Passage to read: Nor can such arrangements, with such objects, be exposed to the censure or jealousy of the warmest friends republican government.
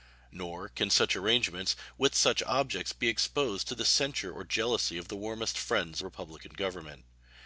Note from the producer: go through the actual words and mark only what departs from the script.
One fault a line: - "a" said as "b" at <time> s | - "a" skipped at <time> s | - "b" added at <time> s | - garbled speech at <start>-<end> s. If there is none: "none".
none